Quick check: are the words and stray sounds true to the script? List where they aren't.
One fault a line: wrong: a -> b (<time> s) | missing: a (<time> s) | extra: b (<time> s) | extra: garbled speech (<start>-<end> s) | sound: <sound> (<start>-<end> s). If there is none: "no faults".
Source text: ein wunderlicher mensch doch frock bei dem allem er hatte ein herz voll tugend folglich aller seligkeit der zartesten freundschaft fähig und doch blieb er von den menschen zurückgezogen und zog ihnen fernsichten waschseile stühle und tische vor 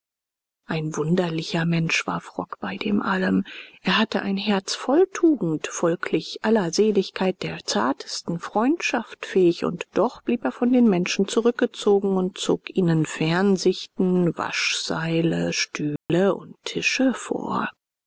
wrong: doch -> war (2.1 s)
sound: dropout (16.0-16.1 s)